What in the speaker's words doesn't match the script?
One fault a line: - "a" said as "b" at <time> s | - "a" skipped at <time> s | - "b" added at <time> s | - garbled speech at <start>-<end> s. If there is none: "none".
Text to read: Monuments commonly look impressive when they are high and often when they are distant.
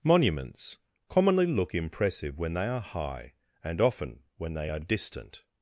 none